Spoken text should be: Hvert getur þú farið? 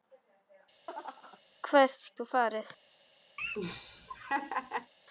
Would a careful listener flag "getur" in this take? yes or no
yes